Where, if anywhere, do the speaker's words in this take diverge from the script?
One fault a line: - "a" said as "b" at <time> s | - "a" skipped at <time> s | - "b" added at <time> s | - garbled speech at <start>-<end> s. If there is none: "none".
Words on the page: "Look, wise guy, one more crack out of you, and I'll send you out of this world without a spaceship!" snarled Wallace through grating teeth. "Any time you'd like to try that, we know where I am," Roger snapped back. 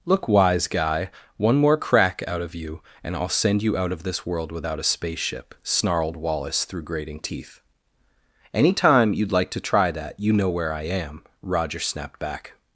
- "we" said as "you" at 10.2 s